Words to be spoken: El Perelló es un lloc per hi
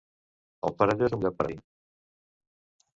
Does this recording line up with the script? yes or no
yes